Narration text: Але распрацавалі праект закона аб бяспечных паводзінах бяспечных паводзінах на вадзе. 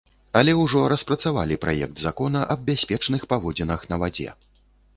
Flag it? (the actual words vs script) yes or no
yes